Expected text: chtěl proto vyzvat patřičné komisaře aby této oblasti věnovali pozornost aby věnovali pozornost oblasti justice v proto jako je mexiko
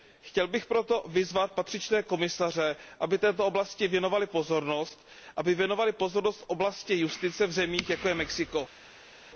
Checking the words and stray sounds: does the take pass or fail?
fail